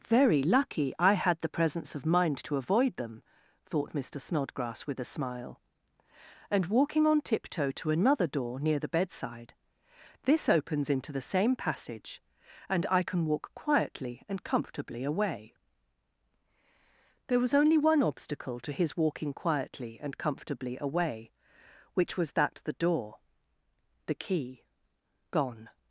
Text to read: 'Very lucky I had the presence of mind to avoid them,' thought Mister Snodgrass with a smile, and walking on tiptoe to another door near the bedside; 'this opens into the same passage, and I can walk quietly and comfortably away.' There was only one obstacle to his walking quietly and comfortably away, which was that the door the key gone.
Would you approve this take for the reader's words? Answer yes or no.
yes